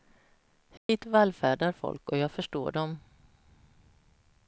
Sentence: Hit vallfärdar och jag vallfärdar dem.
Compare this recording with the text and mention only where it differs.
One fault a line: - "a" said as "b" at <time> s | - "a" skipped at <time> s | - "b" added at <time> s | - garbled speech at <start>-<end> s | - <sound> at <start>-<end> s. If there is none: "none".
- dropout at 0.8-0.9 s
- "folk" added at 1.7 s
- "vallfärdar" said as "förstår" at 2.3 s